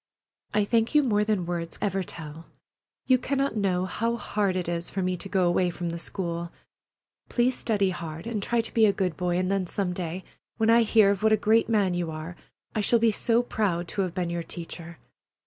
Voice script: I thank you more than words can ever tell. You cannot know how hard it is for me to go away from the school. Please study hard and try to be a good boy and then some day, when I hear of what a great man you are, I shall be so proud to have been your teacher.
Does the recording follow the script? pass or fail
fail